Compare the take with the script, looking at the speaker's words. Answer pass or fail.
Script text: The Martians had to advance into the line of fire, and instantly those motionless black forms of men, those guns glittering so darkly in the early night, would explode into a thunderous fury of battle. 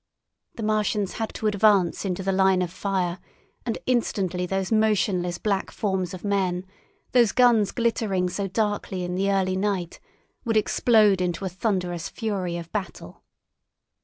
pass